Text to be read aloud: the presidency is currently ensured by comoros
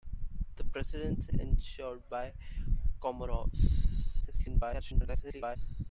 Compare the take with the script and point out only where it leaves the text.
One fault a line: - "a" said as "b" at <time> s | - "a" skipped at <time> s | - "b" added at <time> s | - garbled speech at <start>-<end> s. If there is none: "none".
- "is currently" skipped at 1.3 s
- garbled speech at 4.2-5.6 s